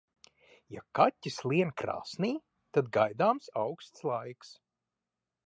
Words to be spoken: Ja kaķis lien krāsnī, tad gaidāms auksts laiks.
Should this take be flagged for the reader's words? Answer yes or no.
no